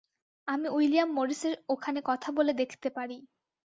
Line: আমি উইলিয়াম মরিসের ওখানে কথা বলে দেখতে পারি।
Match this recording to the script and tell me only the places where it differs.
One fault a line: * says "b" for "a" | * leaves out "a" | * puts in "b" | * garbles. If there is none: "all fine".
all fine